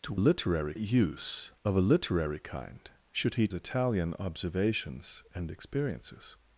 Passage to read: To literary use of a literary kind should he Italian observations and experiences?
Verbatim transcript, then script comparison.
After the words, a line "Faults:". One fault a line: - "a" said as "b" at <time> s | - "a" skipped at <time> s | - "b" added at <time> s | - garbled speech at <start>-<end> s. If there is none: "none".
To literary use of a literary kind should he Italian observations and experiences?
Faults:
none